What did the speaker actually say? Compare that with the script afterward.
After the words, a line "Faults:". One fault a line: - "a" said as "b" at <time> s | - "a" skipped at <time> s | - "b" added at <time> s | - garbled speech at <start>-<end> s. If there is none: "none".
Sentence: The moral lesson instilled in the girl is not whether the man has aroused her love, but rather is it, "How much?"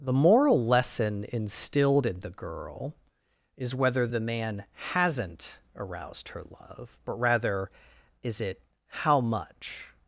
The moral lesson instilled in the girl is whether the man hasn't aroused her love, but rather is it, "How much?"
Faults:
- "not" skipped at 3.8 s
- "has" said as "hasn't" at 4.9 s